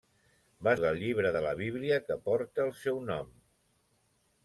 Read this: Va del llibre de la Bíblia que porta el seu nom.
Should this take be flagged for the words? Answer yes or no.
no